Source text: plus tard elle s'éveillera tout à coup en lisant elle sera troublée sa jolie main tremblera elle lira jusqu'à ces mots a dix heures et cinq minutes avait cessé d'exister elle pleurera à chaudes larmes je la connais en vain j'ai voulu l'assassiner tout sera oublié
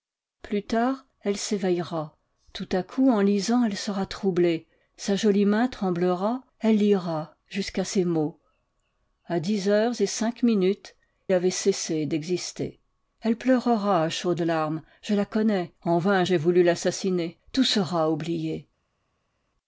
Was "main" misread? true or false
false